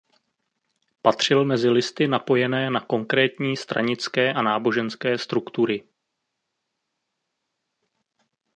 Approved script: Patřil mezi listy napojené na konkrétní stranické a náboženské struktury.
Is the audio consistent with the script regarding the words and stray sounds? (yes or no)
yes